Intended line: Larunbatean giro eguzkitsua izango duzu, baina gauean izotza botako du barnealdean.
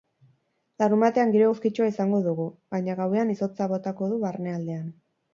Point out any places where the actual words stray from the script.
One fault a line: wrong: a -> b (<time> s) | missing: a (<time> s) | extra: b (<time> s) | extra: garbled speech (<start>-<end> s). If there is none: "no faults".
wrong: duzu -> dugu (2.3 s)